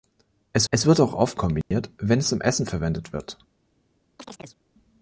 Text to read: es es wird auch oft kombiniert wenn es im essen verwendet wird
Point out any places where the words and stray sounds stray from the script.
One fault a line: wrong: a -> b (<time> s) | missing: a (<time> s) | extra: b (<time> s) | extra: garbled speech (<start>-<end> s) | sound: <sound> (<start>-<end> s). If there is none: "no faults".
sound: dropout (1.6-1.7 s)
sound: chirp (4.2-4.6 s)